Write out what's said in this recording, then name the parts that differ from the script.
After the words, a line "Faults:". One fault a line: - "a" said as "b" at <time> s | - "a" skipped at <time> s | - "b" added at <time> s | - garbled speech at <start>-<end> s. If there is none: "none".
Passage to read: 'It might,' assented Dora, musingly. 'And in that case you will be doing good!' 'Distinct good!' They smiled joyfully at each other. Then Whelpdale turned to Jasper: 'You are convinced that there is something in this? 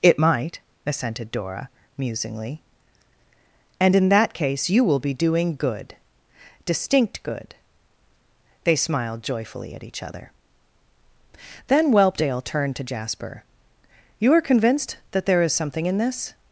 'It might,' assented Dora, musingly. 'And in that case you will be doing good!' 'Distinct good!' They smiled joyfully at each other. Then Whelpdale turned to Jasper: 'You are convinced that there is something in this?
Faults:
none